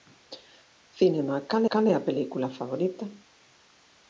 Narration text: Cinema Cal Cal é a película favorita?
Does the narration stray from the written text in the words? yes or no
no